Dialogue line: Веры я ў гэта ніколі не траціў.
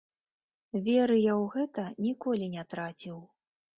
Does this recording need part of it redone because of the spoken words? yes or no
no